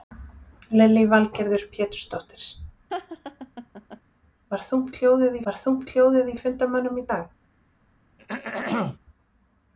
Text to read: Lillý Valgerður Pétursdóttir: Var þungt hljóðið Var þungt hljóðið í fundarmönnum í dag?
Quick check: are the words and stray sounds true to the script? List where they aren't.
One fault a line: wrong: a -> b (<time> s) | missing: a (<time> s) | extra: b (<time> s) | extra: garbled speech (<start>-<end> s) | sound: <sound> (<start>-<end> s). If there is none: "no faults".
sound: laugh (2.9-4.0 s)
sound: throat clearing (8.2-9.0 s)